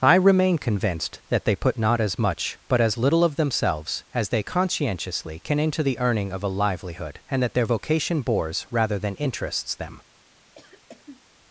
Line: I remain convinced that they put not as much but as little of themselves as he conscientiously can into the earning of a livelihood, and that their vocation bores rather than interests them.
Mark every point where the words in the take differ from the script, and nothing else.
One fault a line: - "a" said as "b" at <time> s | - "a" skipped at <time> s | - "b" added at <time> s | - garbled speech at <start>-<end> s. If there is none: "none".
- "he" said as "they" at 4.3 s